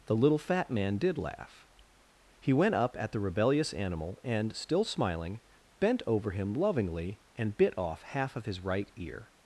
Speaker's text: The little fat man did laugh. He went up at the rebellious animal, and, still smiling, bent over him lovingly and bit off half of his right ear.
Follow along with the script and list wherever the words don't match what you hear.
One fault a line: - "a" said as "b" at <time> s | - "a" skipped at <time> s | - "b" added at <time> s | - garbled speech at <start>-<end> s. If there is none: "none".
none